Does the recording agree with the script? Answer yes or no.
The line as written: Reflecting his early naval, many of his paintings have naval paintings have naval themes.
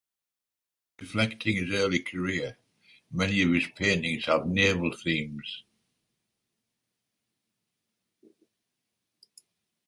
no